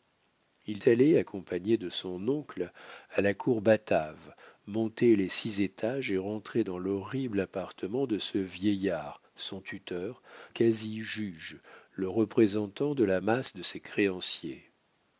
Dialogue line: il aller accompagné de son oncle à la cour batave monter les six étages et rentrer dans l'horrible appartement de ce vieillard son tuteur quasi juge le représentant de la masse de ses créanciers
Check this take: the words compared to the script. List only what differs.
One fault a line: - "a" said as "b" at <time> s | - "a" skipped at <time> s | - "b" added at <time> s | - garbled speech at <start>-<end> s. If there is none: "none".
none